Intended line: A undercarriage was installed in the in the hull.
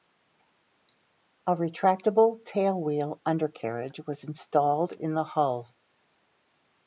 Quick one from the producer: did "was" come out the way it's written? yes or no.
yes